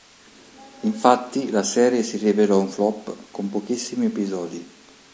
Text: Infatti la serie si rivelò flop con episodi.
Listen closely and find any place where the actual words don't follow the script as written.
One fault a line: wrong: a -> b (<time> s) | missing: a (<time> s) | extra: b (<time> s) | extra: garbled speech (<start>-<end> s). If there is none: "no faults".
extra: un (2.6 s)
extra: pochissimi (3.5 s)